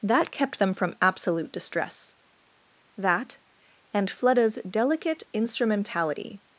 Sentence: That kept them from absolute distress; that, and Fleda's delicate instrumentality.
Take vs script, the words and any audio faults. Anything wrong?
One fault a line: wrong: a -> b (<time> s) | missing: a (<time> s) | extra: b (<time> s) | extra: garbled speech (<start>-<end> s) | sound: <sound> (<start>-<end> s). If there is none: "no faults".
no faults